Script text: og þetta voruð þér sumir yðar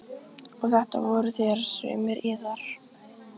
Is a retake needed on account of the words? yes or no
no